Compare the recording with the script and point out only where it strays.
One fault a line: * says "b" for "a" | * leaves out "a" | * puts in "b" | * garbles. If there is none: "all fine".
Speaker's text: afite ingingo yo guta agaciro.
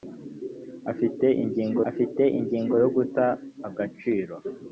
* puts in "afite ingingo"